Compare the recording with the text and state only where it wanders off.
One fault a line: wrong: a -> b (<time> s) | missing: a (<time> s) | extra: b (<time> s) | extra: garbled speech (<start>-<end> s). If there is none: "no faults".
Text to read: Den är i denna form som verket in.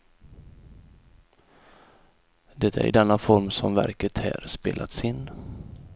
wrong: Den -> Det (2.5 s)
extra: här spelats (4.2 s)